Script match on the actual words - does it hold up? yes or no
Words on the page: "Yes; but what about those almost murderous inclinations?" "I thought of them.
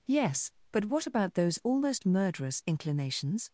no